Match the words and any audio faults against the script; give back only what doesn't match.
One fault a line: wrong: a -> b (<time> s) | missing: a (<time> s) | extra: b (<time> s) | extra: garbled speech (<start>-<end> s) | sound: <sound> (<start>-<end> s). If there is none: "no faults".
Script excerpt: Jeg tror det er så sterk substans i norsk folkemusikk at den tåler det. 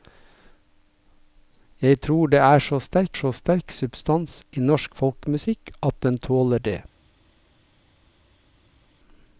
extra: så sterk (3.1 s)